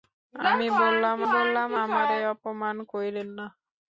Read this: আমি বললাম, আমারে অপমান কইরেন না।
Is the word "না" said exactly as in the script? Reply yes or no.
yes